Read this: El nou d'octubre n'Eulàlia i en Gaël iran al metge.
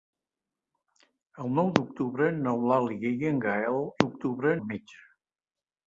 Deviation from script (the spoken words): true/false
true